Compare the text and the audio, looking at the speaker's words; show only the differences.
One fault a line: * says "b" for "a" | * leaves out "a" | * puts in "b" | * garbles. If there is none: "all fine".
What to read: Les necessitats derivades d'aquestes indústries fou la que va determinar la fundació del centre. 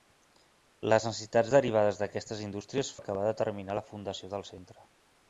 * leaves out "fou"